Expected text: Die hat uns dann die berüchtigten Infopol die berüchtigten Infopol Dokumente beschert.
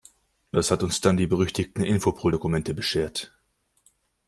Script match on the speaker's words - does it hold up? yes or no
no